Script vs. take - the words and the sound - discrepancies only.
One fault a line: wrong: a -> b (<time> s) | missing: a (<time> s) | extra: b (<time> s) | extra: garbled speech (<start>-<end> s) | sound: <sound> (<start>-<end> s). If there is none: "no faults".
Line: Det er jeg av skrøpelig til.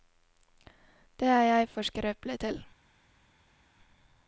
wrong: av -> for (1.7 s)